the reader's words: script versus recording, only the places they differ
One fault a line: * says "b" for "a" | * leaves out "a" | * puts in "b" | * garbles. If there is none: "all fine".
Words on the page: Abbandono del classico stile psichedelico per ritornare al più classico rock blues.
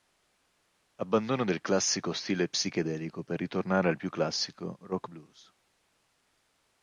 all fine